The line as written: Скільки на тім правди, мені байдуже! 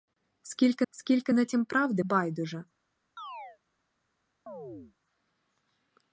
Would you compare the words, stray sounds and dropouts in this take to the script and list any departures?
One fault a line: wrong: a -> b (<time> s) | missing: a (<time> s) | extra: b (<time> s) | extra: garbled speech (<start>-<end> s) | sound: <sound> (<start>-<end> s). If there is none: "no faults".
extra: скільки (0.9 s)
missing: мені (2.0 s)
sound: chirp (3.2-3.6 s)
sound: chirp (4.5-4.9 s)